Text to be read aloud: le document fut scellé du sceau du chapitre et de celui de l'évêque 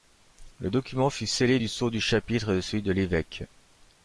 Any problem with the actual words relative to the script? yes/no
no